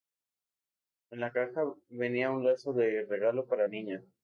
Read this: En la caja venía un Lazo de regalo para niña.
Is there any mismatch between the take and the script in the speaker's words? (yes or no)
no